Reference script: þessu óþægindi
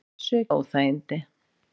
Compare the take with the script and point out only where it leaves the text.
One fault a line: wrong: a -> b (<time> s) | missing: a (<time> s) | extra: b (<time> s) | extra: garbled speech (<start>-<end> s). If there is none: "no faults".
no faults